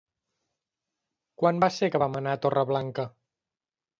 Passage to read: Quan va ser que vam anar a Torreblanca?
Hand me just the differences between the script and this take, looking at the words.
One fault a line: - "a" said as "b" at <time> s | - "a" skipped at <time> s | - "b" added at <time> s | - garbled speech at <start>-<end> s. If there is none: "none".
none